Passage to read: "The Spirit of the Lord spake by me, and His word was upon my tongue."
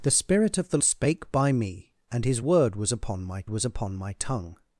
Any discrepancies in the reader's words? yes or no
yes